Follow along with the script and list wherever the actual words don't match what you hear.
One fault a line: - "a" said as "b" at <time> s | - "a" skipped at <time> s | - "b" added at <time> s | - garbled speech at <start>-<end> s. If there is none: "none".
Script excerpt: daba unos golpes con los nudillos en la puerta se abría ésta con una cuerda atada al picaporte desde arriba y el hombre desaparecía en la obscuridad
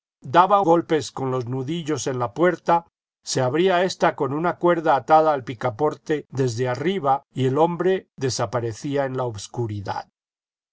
- "unos" skipped at 0.6 s